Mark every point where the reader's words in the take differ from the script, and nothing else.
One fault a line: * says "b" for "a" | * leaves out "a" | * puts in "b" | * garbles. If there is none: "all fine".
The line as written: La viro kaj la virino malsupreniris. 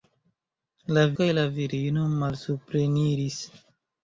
* leaves out "viro"